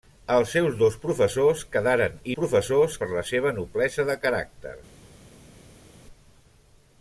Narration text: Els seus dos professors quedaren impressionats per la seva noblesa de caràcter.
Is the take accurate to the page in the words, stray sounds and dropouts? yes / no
no